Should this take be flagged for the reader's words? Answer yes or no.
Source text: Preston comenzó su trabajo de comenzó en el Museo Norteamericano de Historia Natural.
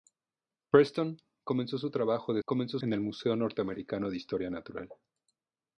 no